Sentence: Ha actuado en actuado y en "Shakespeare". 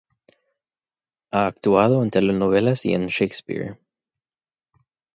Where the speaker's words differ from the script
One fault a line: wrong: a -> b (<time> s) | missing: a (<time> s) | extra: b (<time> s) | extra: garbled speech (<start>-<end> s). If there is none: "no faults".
wrong: actuado -> telenovelas (2.1 s)